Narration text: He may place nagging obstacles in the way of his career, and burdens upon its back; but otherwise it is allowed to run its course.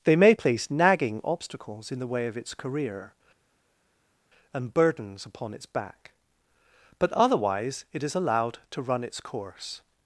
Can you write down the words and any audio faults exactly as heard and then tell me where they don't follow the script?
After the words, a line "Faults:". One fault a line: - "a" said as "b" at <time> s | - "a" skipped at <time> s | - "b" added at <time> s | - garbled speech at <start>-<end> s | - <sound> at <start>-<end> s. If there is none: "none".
They may place nagging obstacles in the way of its career, and burdens upon its back; but otherwise it is allowed to run its course.
Faults:
- "He" said as "They" at 0.0 s
- "his" said as "its" at 2.4 s